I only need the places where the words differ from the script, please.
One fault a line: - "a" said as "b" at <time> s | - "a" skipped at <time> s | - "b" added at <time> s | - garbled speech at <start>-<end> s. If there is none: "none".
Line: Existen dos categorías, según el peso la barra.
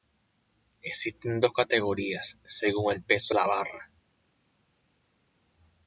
none